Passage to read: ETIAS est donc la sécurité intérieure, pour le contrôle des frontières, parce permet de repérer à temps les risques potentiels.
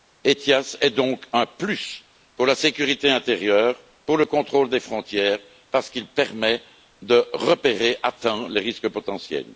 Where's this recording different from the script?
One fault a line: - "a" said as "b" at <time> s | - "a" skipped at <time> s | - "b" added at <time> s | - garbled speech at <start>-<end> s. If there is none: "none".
- "un plus pour" added at 1.3 s
- "qu'il" added at 5.9 s